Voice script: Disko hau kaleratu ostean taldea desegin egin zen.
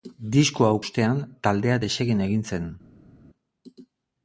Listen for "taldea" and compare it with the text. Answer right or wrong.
right